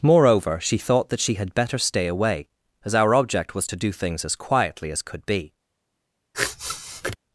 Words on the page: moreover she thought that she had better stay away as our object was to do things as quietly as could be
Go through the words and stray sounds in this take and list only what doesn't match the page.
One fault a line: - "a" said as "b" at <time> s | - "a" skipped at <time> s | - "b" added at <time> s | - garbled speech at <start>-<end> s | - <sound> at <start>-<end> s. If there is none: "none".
- sniff at 6.3-7.2 s